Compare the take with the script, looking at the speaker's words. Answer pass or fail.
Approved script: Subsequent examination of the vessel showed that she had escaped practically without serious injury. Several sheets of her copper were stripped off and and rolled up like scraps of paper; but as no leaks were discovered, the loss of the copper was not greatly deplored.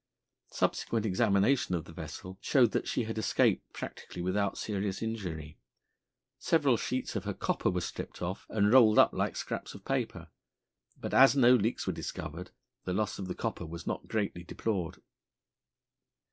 fail